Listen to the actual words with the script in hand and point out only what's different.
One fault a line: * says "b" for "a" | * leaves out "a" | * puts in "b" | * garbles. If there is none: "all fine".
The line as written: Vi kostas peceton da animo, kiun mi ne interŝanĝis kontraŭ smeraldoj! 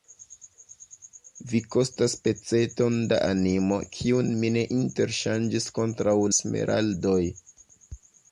all fine